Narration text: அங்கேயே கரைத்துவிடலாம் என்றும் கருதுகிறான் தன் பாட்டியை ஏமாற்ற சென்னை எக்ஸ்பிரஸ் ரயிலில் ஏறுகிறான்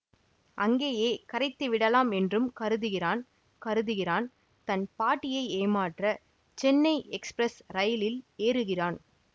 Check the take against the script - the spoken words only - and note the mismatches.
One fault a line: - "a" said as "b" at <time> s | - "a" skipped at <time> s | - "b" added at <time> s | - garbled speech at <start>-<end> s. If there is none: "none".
- "கருதுகிறான்" added at 3.6 s